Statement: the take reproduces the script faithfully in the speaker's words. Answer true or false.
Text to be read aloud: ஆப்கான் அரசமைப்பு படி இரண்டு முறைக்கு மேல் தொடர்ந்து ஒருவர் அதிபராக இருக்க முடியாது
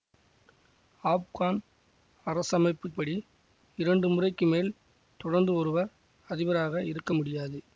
true